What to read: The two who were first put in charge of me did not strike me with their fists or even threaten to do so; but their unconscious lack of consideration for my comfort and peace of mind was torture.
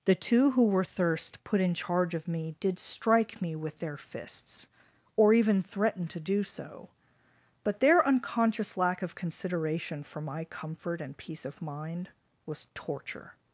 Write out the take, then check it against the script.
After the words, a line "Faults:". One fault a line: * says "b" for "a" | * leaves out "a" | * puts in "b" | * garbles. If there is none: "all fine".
The two who were thirst put in charge of me did strike me with their fists or even threaten to do so; but their unconscious lack of consideration for my comfort and peace of mind was torture.
Faults:
* says "thirst" for "first"
* leaves out "not"